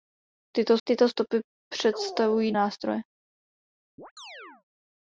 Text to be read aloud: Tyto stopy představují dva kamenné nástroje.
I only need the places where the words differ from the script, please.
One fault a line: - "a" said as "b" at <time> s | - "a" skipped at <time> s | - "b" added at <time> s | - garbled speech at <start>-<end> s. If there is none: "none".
- "tyto" added at 0.9 s
- "dva kamenné" skipped at 2.5 s